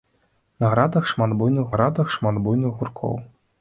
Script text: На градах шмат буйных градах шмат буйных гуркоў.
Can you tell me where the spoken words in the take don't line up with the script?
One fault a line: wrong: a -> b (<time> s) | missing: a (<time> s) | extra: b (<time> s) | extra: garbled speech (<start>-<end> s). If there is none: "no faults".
no faults